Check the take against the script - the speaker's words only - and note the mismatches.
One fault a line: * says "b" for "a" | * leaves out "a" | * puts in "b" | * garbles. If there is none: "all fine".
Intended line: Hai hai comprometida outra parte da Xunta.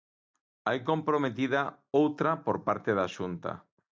* leaves out "hai"
* puts in "por"